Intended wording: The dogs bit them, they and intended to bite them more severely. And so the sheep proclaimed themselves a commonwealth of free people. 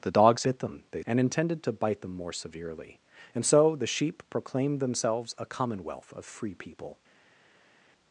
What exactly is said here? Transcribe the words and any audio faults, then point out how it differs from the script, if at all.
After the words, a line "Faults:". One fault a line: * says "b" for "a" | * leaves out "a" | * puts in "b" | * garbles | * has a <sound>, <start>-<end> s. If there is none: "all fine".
The dogs bit them, they and intended to bite them more severely. And so the sheep proclaimed themselves a commonwealth of free people.
Faults:
all fine